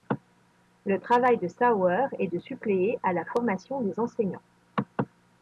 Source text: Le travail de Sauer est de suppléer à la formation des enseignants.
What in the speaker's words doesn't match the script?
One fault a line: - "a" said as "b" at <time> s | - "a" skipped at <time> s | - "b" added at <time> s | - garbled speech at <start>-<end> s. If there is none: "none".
none